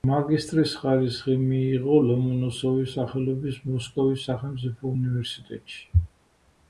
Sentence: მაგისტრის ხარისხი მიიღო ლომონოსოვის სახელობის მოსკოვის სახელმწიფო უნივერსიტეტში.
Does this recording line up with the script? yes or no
yes